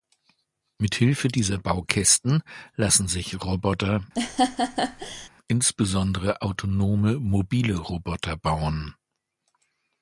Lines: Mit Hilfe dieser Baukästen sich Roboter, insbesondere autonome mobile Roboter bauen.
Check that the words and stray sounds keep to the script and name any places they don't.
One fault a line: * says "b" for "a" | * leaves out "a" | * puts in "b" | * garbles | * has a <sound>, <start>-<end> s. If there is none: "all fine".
* puts in "lassen"
* has a laugh, 4.2-5.3 s